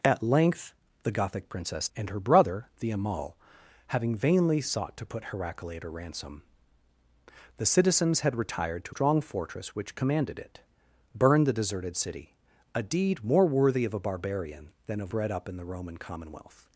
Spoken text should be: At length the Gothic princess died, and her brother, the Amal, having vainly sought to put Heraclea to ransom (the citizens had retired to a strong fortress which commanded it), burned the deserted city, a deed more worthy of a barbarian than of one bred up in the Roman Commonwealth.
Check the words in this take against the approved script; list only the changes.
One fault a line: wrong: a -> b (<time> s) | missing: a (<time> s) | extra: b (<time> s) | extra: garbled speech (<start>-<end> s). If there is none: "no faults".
missing: died (1.9 s)
missing: a (9.0 s)
missing: one (15.1 s)